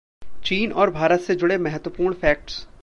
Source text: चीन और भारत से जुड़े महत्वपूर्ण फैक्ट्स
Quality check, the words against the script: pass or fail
pass